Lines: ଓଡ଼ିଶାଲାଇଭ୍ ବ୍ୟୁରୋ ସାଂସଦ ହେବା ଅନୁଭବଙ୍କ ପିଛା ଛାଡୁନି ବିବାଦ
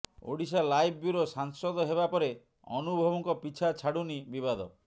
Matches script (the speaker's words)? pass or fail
fail